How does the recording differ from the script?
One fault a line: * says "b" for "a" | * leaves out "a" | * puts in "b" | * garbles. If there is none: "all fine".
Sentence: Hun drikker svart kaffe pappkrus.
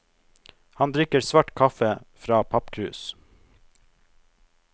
* says "Han" for "Hun"
* puts in "fra"